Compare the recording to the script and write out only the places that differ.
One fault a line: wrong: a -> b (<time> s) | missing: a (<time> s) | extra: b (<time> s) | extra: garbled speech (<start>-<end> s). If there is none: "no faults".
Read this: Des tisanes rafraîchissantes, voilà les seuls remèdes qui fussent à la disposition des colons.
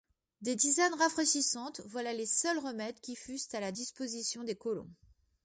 no faults